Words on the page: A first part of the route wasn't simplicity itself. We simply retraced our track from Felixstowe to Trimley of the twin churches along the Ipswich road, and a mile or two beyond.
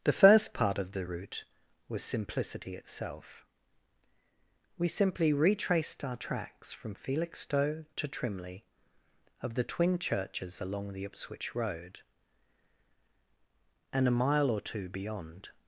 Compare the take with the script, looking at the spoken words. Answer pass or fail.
fail